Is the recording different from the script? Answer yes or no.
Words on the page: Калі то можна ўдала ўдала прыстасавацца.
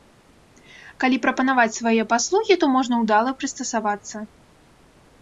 yes